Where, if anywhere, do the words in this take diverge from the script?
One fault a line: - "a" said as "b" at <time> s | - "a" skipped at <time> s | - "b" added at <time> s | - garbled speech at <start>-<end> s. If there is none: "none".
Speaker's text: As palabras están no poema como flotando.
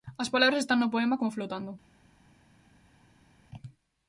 none